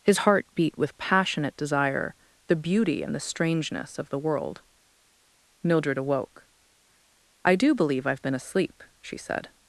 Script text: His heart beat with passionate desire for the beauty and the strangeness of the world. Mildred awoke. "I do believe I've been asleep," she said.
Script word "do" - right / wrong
right